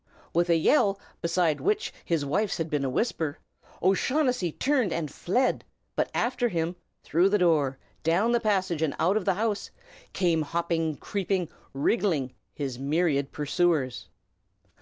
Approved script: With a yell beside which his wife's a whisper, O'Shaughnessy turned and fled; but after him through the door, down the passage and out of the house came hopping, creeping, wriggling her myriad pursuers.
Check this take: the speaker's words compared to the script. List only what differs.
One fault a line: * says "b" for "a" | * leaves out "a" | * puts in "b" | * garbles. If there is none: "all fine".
* puts in "had been"
* says "his" for "her"